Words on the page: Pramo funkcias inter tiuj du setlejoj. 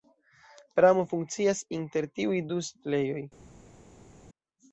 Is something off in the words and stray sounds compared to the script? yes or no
no